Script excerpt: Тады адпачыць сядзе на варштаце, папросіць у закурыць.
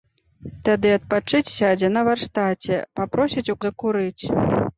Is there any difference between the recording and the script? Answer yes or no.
no